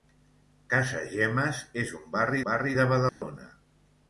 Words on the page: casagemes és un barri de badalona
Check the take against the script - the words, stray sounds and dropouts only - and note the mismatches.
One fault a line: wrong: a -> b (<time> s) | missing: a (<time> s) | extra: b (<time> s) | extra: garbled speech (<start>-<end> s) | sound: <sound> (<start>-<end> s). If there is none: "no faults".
extra: barri (2.5 s)
sound: dropout (3.1-3.2 s)